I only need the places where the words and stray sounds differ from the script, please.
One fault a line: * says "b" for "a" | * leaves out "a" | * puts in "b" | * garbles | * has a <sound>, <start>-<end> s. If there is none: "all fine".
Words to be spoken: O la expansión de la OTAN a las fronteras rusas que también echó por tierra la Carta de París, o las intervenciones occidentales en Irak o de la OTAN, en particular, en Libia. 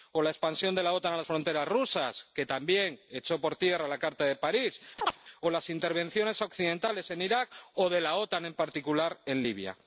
* has a chirp, 5.0-5.2 s